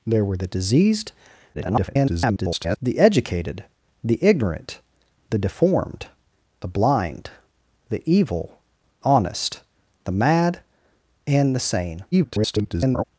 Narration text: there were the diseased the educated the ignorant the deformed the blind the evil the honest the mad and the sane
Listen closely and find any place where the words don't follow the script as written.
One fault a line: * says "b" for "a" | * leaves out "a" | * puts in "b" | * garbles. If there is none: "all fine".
* garbles
* leaves out "the"
* garbles